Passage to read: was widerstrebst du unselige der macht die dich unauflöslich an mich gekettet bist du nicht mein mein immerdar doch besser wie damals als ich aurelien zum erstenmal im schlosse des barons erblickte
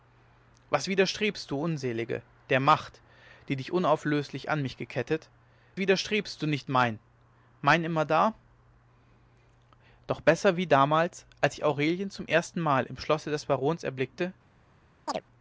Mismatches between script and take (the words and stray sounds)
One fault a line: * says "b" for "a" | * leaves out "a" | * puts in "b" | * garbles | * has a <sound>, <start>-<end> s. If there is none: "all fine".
* says "widerstrebst" for "bist"
* has a chirp, 15.1-15.2 s